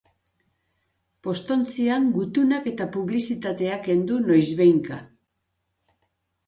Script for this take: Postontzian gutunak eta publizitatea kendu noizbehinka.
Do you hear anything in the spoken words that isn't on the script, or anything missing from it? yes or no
no